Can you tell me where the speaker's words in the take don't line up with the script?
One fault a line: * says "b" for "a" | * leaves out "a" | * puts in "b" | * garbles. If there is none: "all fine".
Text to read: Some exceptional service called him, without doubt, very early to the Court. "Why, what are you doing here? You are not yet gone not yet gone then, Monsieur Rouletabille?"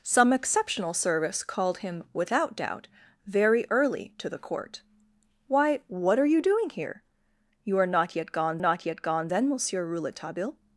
all fine